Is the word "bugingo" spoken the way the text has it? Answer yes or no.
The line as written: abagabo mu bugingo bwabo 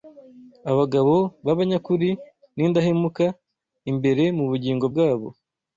yes